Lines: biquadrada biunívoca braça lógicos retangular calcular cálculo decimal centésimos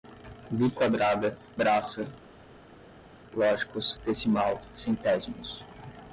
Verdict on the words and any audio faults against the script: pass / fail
fail